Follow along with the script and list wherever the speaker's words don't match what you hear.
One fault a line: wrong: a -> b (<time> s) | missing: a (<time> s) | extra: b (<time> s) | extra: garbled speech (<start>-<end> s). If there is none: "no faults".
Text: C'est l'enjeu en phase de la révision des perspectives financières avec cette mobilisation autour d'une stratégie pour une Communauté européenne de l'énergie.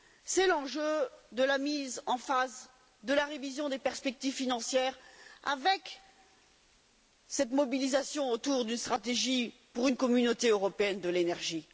extra: de la mise (1.3 s)